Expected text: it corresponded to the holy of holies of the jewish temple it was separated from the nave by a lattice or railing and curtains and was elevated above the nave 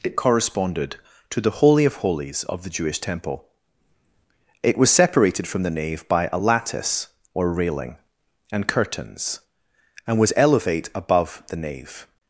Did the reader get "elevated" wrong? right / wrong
wrong